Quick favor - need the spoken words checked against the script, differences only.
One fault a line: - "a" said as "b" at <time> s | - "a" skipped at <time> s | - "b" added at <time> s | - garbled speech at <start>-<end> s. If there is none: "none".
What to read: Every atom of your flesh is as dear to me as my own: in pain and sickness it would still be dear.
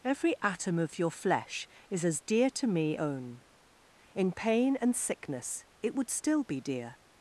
- "as my" skipped at 3.0 s